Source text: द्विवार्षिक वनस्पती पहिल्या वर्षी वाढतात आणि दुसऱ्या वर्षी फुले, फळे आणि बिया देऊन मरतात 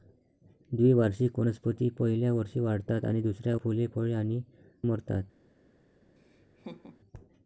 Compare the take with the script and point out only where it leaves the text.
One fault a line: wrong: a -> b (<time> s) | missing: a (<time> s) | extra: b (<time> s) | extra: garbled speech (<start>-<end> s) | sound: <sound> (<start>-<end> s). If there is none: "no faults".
missing: वर्षी (3.5 s)
missing: बिया देऊन (4.4 s)
sound: laugh (6.2-7.0 s)